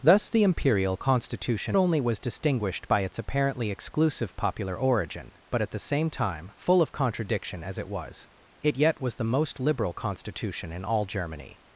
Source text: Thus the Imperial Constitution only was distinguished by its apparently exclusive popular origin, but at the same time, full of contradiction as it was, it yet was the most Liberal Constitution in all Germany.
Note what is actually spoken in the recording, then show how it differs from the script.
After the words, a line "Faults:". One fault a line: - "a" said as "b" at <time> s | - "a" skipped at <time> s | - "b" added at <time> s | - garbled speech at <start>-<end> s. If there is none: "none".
Thus the Imperial Constitution only was distinguished by its apparently exclusive popular origin, but at the same time, full of contradiction as it was, it yet was the most Liberal Constitution in all Germany.
Faults:
none